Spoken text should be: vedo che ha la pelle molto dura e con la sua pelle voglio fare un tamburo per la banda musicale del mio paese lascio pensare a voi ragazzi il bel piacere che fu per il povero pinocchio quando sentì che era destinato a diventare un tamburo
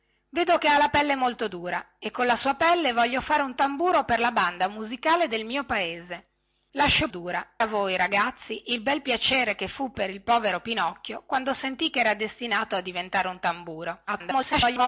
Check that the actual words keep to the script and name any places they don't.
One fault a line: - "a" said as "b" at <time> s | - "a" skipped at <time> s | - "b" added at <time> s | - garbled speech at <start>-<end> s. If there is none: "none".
- "pensare" said as "dura" at 7.1 s
- garbled speech at 14.1-14.9 s